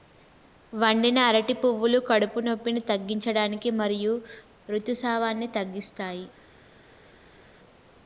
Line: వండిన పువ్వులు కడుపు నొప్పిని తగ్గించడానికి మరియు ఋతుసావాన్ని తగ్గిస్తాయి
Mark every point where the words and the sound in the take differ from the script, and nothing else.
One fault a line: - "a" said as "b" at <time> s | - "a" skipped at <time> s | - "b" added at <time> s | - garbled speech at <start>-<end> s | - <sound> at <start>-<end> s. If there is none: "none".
- "అరటి" added at 1.2 s